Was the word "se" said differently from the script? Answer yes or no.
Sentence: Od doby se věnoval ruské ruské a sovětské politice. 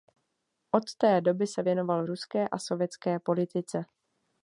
no